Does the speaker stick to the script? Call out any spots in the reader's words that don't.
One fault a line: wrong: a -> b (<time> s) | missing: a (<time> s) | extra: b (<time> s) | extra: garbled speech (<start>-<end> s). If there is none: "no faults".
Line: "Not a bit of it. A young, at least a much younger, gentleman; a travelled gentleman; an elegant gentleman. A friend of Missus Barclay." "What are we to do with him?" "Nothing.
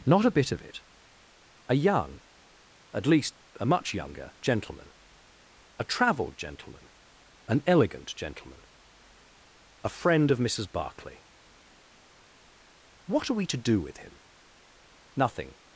no faults